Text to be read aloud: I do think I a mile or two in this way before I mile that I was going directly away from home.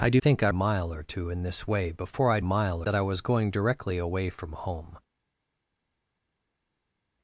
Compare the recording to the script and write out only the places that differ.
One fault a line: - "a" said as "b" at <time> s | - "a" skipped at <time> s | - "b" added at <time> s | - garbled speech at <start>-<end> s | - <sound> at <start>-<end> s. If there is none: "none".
none